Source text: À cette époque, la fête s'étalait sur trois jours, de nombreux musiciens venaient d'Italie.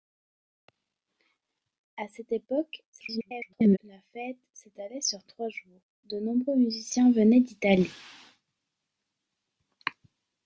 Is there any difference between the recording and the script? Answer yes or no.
yes